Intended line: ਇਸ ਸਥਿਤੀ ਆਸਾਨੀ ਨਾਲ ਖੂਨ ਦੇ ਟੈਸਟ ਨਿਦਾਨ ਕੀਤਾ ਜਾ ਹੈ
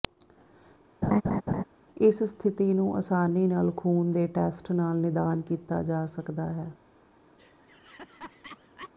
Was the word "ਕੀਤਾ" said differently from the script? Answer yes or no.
no